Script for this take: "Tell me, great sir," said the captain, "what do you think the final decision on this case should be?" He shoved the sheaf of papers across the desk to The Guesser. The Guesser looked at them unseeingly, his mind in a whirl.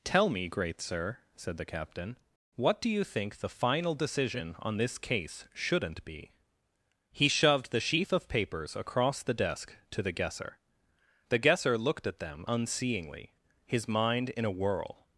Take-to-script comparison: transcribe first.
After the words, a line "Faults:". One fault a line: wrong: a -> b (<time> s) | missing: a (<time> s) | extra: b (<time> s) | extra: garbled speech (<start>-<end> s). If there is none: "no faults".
"Tell me, great sir," said the captain, "what do you think the final decision on this case shouldn't be?" He shoved the sheaf of papers across the desk to The Guesser. The Guesser looked at them unseeingly, his mind in a whirl.
Faults:
wrong: should -> shouldn't (5.5 s)